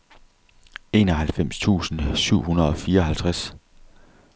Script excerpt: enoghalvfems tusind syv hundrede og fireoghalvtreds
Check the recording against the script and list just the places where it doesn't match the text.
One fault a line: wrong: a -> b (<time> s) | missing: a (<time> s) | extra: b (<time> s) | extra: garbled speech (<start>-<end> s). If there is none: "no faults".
no faults